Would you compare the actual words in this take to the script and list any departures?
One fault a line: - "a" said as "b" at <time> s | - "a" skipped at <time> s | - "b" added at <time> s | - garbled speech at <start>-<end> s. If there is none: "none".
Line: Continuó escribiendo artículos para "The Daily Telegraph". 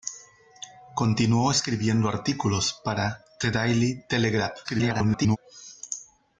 - garbled speech at 4.6-5.4 s